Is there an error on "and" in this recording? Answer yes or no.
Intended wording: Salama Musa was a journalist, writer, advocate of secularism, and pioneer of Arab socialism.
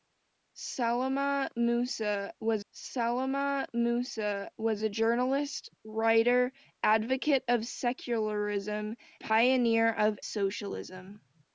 yes